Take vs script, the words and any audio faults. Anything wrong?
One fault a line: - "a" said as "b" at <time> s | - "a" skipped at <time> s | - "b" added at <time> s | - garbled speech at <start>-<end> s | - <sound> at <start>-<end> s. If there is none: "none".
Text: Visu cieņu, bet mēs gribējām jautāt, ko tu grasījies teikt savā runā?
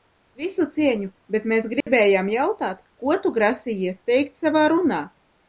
- dropout at 1.8-1.9 s